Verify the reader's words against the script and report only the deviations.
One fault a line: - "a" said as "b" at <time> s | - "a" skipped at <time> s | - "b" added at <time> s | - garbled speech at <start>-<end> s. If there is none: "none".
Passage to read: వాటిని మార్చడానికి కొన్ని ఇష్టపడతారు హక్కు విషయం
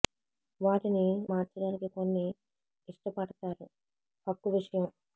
none